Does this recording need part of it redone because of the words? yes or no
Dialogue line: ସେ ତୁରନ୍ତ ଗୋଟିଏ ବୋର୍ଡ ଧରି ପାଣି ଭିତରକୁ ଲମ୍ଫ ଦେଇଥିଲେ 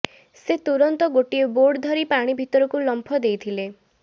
no